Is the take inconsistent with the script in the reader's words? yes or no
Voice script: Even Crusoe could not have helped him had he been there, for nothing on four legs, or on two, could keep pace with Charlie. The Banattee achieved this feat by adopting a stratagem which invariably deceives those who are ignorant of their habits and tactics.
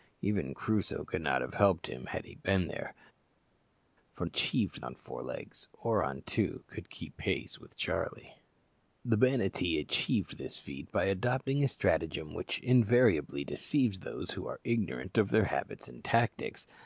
yes